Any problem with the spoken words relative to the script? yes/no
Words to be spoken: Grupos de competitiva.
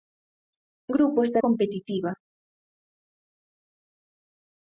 no